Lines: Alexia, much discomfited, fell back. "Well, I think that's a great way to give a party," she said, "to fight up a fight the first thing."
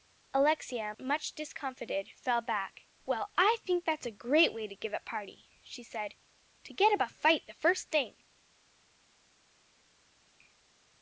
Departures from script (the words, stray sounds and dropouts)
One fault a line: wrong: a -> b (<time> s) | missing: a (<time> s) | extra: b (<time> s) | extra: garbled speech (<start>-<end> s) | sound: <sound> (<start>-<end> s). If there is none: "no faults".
wrong: fight -> get (6.7 s)